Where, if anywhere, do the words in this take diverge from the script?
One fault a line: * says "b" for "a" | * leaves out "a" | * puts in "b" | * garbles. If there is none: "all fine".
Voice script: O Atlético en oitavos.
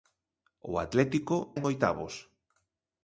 all fine